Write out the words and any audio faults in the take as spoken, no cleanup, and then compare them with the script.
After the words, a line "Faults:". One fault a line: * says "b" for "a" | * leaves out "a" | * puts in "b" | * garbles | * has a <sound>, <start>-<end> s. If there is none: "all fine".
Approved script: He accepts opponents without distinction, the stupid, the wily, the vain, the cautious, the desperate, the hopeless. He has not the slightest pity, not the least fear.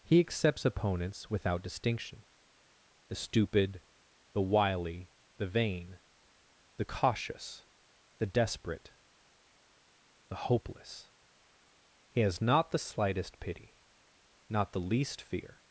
He accepts opponents without distinction, the stupid, the wily, the vain, the cautious, the desperate, the hopeless. He has not the slightest pity, not the least fear.
Faults:
all fine